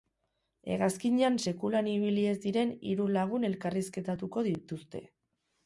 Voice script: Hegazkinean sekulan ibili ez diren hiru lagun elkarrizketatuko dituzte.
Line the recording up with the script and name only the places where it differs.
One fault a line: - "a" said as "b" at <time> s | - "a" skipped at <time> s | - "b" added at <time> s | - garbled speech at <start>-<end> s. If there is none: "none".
none